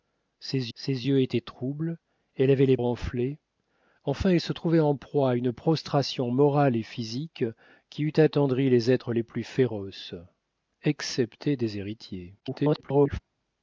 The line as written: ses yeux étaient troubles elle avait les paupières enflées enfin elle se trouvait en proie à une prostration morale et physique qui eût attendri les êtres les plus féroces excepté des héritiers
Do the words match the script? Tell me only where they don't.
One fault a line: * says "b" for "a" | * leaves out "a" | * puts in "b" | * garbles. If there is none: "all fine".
* puts in "ses"
* leaves out "paupières"
* garbles